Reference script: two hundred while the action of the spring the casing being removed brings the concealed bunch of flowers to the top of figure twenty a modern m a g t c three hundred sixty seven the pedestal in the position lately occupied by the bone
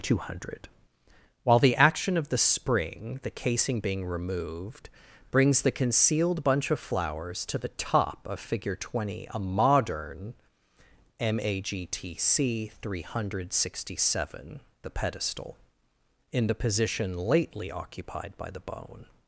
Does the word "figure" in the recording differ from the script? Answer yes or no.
no